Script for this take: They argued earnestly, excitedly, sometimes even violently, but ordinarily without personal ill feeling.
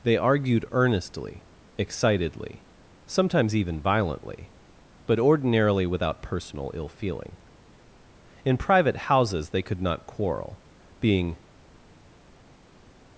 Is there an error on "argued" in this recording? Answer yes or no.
no